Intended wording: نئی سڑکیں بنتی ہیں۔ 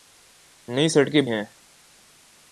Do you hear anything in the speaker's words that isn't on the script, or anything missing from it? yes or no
yes